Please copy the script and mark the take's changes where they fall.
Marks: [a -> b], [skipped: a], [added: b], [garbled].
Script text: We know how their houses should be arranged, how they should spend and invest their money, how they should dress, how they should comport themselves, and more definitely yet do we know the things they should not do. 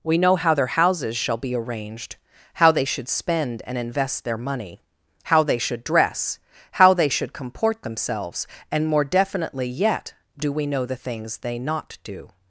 We know how their houses [should -> shall] be arranged, how they should spend and invest their money, how they should dress, how they should comport themselves, and more definitely yet do we know the things they [skipped: should] not do.